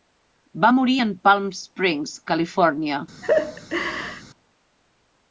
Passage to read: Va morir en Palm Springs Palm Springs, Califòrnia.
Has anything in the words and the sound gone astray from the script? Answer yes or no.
yes